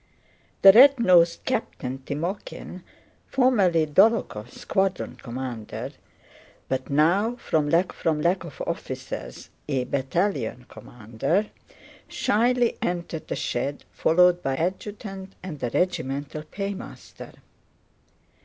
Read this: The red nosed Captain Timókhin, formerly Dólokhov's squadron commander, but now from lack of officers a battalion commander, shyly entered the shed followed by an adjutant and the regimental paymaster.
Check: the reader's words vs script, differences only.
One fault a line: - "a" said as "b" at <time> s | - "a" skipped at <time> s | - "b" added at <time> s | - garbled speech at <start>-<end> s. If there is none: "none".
- "from lack" added at 7.9 s
- "an" skipped at 14.6 s